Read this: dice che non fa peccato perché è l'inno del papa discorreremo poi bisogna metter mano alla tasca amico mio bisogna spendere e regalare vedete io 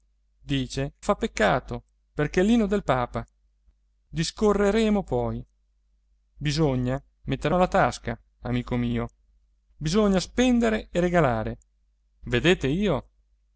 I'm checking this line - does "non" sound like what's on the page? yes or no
no